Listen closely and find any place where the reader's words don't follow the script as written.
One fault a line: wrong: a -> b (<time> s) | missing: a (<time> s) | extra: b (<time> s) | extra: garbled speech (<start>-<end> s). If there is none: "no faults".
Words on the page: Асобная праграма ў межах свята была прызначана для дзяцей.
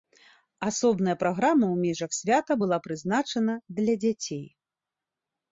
no faults